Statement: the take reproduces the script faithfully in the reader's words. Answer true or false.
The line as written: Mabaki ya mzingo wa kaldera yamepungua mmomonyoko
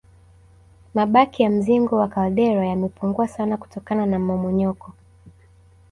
false